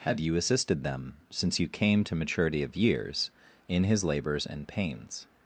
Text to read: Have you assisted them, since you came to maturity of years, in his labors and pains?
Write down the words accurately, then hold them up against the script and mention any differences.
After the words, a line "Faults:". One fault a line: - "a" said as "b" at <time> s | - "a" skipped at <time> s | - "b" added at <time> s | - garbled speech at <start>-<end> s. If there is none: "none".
Have you assisted them, since you came to maturity of years, in his labors and pains?
Faults:
none